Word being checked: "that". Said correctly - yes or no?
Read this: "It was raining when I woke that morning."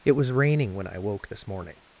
no